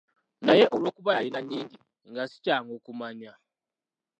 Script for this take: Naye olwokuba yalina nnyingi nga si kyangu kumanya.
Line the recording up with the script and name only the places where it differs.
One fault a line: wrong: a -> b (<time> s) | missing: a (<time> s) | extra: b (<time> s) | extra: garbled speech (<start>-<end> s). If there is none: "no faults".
no faults